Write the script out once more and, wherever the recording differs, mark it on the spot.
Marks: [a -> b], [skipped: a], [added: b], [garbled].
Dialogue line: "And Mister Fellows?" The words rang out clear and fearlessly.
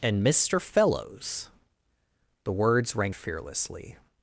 "And Mister Fellows?" The words rang [skipped: out clear and] fearlessly.